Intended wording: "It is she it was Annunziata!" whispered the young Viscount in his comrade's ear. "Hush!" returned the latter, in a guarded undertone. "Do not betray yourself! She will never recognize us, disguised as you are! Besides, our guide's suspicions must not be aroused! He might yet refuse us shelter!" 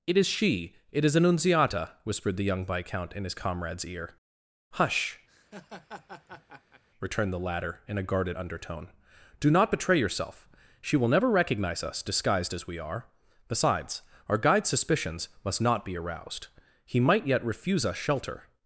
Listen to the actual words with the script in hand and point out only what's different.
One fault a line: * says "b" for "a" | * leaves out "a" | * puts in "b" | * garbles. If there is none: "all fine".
* says "is" for "was"
* says "we" for "you"